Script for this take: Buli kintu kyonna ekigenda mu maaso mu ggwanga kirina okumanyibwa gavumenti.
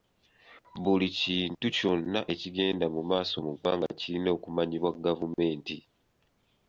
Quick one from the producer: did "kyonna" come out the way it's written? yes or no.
yes